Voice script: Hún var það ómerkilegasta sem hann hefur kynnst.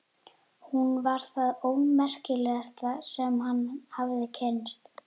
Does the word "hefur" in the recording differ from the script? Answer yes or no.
yes